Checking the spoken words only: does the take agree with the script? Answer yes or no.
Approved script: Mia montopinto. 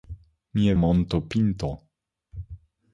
yes